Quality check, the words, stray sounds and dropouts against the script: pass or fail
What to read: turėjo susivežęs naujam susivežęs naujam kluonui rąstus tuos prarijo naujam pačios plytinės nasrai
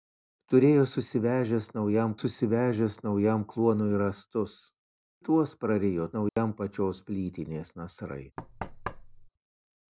fail